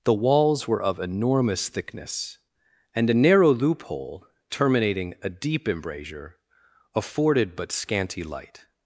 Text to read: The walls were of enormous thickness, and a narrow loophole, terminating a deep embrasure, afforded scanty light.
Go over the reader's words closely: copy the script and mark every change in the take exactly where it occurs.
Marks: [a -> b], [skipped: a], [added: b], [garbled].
The walls were of enormous thickness, and a narrow loophole, terminating a deep embrasure, afforded [added: but] scanty light.